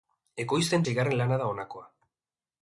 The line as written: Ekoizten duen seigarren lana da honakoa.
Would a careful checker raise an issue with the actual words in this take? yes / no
yes